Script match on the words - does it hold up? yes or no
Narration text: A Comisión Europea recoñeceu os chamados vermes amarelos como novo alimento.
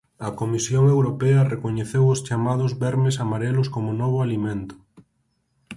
yes